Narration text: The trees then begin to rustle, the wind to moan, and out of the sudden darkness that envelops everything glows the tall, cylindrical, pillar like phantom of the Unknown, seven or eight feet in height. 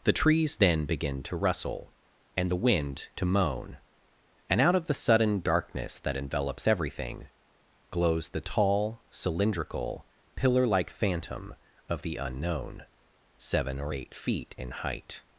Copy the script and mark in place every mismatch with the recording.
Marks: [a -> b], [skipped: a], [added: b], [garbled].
The trees then begin to rustle, [added: and] the wind to moan, and out of the sudden darkness that envelops everything glows the tall, cylindrical, pillar like phantom of the Unknown, seven or eight feet in height.